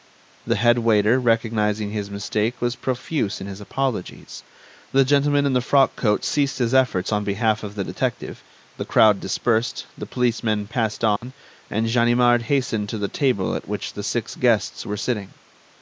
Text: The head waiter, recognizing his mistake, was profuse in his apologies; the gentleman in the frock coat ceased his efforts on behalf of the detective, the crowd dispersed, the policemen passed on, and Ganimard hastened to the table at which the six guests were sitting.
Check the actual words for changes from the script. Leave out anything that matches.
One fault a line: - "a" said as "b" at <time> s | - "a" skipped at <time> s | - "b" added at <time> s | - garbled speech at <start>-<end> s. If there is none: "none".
none